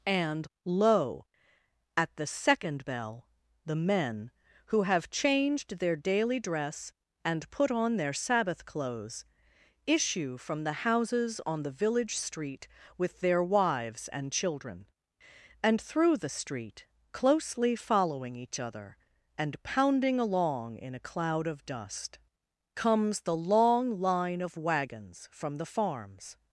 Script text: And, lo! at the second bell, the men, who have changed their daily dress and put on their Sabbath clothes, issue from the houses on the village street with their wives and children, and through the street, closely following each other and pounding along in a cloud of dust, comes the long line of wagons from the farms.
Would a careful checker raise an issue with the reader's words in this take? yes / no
no